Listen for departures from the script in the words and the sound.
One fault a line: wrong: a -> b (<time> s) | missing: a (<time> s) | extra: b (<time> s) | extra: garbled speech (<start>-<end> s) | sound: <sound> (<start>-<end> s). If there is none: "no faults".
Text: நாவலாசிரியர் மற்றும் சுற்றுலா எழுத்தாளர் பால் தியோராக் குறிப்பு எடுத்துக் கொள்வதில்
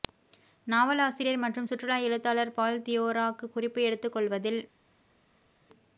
no faults